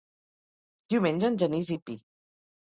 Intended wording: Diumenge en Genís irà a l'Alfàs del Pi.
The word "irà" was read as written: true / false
false